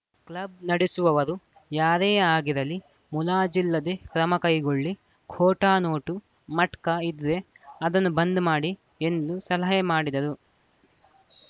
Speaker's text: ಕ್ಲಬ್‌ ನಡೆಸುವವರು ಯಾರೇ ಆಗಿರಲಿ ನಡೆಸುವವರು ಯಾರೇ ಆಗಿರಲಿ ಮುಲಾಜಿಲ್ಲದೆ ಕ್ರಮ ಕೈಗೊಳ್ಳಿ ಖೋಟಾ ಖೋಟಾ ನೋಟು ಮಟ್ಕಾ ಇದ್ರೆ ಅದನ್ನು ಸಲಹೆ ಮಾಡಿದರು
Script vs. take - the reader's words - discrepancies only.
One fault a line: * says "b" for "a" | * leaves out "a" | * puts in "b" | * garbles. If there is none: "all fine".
* leaves out "ನಡೆಸುವವರು ಯಾರೇ ಆಗಿರಲಿ"
* leaves out "ಖೋಟಾ"
* puts in "ಬಂದ್ ಮಾಡಿ ಎಂದು"